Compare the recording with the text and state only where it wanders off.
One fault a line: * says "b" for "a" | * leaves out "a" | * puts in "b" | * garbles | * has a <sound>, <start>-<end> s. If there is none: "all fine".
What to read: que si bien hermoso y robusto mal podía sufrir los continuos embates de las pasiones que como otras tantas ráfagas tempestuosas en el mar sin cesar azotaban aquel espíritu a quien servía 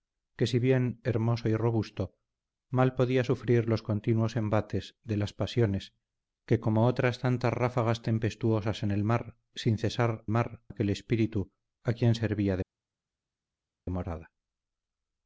* says "mar" for "azotaban"